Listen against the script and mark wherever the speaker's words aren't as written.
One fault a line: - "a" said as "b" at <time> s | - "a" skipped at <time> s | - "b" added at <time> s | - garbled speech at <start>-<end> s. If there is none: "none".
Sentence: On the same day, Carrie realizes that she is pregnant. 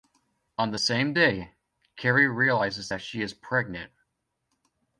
none